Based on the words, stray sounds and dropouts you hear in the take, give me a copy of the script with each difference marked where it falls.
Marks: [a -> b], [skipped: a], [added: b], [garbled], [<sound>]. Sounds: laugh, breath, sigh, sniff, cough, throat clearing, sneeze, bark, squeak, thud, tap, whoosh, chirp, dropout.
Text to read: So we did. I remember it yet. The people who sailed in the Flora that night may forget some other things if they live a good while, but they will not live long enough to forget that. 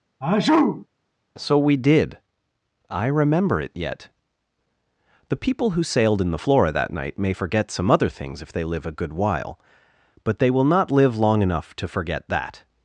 [sneeze] So we did. I remember it yet. The people who sailed in the Flora that night may forget some other things if they live a good while, but they will not live long enough to forget that.